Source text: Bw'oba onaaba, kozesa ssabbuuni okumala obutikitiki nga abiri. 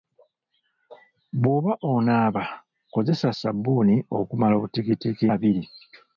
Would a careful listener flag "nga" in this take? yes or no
yes